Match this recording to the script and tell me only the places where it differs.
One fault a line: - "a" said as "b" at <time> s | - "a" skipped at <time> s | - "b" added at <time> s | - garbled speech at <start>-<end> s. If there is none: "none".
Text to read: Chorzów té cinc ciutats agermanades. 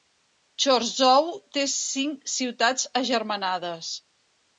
none